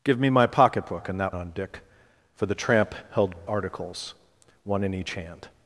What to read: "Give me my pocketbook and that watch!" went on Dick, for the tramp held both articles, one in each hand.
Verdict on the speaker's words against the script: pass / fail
fail